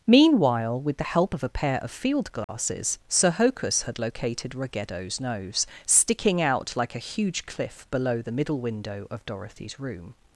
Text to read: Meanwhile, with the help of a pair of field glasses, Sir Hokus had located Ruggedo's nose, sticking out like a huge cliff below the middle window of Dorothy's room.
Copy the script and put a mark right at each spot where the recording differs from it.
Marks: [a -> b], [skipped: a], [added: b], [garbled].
Meanwhile, with the help of a pair of field glasses, Sir Hokus had located Ruggedo's nose, sticking out like a huge cliff below the middle window of Dorothy's room.